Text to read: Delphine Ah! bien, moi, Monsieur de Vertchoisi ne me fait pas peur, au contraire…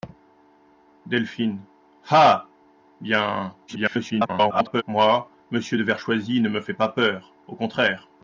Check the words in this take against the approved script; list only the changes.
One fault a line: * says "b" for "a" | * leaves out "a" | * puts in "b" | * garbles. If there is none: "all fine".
* garbles